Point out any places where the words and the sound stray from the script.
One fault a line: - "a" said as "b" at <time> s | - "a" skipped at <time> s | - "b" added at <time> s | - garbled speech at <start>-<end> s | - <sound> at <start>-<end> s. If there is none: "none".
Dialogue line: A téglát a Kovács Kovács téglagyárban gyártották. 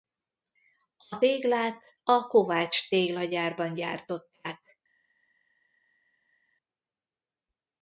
- "Kovács" skipped at 2.9 s